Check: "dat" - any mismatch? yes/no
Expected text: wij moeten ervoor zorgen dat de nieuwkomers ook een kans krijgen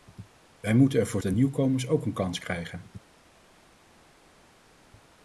yes